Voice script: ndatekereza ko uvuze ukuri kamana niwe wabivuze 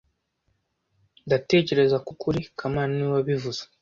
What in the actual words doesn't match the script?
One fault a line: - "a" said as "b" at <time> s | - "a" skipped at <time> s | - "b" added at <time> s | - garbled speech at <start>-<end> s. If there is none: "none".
- "uvuze" skipped at 2.1 s